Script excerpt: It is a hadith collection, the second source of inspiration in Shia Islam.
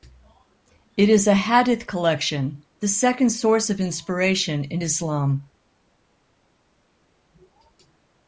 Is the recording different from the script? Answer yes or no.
yes